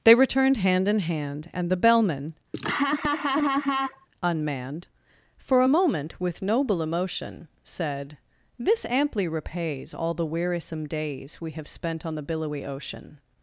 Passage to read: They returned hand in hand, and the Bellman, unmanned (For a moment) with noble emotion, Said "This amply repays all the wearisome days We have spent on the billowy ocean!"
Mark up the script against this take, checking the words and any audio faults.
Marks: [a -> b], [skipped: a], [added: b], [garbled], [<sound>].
They returned hand in hand, and the Bellman, [laugh] unmanned (For a moment) with noble emotion, Said "This amply repays all the wearisome days We have spent on the billowy ocean!"